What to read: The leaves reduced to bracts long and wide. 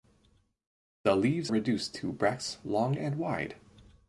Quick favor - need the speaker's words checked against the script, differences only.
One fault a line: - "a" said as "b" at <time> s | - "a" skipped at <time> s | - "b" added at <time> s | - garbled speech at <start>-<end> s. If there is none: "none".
none